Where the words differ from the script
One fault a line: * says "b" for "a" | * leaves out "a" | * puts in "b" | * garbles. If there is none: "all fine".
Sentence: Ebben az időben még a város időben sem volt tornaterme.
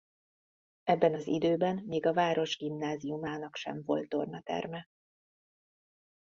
* says "gimnáziumának" for "időben"